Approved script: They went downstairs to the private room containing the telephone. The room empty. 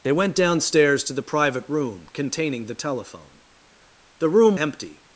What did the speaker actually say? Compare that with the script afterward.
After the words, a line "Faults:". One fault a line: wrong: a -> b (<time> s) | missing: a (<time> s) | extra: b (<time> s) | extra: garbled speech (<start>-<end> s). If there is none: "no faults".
They went downstairs to the private room containing the telephone. The room empty.
Faults:
no faults